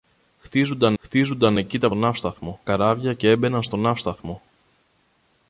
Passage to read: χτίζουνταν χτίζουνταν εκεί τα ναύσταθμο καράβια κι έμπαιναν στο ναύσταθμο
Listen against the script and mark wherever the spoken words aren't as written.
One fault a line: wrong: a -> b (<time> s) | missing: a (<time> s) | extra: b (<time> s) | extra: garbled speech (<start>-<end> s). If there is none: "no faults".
no faults